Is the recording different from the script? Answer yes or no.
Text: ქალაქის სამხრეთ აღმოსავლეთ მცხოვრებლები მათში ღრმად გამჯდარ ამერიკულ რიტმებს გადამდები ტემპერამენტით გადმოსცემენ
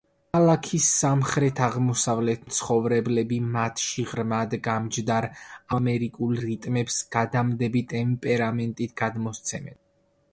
no